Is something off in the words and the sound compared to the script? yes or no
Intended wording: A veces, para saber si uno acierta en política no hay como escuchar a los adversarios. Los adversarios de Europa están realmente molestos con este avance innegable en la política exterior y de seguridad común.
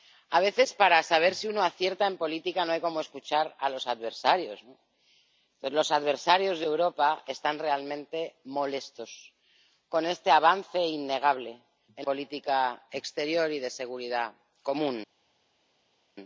yes